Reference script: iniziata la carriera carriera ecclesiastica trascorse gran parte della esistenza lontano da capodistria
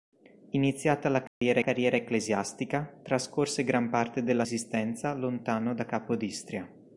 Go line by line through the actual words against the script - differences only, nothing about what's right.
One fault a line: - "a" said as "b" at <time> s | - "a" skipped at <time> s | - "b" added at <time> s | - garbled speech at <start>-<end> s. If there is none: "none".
none